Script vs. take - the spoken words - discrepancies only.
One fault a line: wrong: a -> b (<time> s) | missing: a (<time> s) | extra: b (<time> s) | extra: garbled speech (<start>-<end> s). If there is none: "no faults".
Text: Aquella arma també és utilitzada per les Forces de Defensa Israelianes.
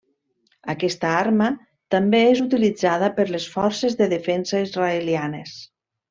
wrong: Aquella -> Aquesta (0.7 s)